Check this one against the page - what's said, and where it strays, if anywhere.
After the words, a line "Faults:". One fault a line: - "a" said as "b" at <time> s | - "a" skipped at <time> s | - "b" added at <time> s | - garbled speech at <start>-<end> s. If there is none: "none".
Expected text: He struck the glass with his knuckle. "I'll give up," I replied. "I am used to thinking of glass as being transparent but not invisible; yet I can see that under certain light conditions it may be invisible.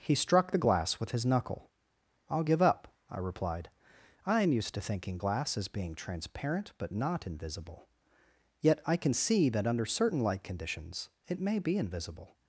He struck the glass with his knuckle. "I'll give up," I replied. "I am used to thinking glass as being transparent but not invisible; yet I can see that under certain light conditions it may be invisible.
Faults:
- "of" skipped at 5.2 s